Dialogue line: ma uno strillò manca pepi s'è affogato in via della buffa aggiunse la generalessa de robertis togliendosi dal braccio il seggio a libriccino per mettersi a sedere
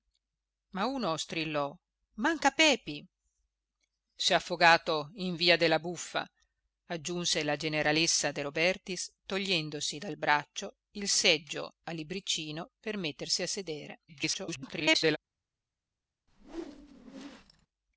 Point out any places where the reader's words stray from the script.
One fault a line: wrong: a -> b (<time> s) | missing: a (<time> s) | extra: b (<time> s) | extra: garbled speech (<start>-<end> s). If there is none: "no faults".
extra: garbled speech (14.1-15.2 s)